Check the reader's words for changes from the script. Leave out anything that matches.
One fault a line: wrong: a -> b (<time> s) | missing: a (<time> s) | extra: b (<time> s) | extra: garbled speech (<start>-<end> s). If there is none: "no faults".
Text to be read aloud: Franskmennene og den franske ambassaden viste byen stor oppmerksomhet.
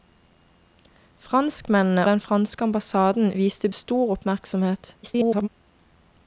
missing: og (2.1 s)
missing: byen (3.7 s)
extra: garbled speech (5.0-5.5 s)